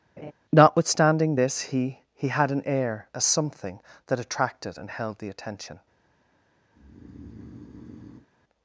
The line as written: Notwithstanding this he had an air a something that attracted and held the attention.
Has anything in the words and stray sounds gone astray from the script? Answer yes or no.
yes